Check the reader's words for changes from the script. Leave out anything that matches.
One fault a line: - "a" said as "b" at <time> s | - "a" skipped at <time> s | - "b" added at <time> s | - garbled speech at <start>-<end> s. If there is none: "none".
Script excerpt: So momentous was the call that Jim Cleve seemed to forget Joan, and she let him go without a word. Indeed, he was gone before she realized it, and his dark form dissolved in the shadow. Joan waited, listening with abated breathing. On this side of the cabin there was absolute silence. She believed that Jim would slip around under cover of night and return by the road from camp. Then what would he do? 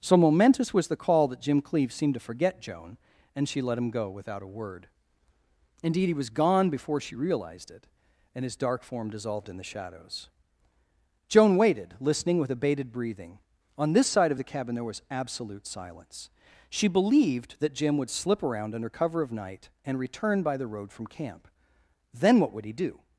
- "shadow" said as "shadows" at 9.6 s